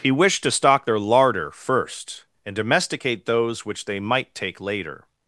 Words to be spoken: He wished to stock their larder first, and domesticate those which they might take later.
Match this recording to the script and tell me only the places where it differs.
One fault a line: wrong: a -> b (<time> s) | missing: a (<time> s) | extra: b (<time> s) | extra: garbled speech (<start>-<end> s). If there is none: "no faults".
no faults